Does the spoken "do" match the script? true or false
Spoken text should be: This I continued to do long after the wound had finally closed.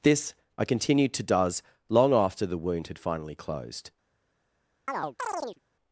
false